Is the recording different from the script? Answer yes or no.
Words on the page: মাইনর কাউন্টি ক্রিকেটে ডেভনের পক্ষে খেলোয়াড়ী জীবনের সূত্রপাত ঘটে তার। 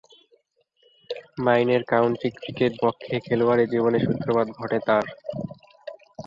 yes